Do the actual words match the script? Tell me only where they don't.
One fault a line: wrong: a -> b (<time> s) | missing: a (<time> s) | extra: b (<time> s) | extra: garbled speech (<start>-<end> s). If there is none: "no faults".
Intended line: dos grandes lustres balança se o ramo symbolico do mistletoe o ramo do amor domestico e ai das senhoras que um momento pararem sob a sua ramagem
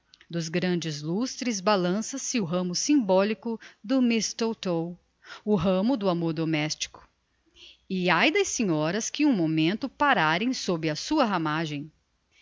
no faults